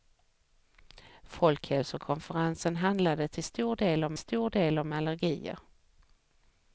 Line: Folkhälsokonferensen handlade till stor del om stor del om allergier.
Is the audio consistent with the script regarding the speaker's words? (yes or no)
yes